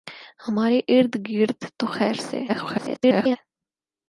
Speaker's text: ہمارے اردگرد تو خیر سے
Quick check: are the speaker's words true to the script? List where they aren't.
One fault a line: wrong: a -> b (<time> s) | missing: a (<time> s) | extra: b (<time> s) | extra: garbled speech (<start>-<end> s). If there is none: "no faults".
extra: garbled speech (2.5-3.4 s)